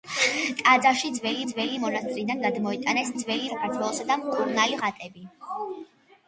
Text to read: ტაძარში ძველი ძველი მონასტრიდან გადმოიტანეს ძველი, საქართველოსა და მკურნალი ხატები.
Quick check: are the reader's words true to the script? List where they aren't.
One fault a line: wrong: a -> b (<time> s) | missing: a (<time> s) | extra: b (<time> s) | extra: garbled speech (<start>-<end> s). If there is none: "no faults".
no faults